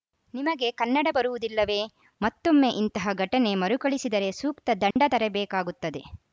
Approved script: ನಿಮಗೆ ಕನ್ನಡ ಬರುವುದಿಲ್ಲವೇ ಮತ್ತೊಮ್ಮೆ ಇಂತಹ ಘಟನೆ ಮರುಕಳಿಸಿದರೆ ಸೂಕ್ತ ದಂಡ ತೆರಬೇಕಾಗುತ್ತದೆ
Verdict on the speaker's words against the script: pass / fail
pass